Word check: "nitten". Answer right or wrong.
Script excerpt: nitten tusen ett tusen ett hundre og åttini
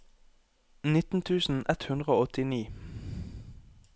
right